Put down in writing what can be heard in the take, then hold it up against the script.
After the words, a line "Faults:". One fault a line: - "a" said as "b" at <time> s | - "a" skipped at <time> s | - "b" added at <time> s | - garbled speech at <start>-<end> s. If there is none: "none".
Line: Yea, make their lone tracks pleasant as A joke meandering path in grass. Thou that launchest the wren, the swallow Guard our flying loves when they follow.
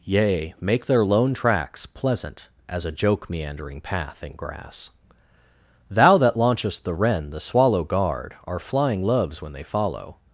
Yea, make their lone tracks pleasant as A joke meandering path in grass. Thou that launchest the wren, the swallow Guard our flying loves when they follow.
Faults:
none